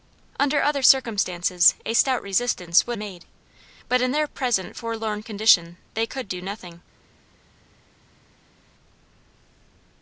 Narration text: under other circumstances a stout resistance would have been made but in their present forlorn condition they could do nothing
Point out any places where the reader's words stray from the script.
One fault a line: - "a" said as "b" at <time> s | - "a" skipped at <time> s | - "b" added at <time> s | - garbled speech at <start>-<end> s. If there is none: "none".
- "have been" skipped at 3.0 s